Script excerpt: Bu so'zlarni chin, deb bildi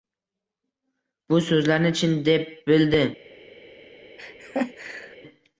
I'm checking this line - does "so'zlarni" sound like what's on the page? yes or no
yes